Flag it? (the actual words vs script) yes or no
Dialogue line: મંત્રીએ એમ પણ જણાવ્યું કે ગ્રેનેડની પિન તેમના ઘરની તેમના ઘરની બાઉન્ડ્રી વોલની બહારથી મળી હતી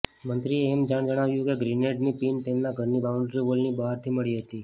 yes